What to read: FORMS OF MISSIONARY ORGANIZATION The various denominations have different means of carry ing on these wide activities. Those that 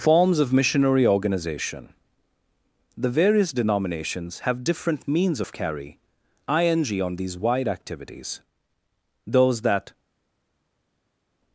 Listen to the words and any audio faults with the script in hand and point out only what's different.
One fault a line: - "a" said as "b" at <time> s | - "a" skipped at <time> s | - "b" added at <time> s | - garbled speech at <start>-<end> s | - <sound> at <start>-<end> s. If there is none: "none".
none